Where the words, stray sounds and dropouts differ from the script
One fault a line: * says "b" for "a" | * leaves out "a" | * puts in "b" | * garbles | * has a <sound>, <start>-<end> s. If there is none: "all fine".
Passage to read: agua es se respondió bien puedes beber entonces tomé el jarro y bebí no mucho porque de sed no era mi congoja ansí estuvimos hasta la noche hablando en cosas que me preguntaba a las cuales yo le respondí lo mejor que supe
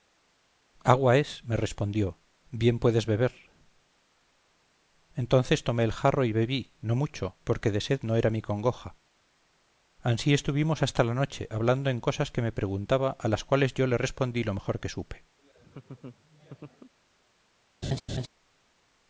* says "me" for "se"
* has a laugh, 15.4-16.9 s
* has a laugh, 17.8-18.3 s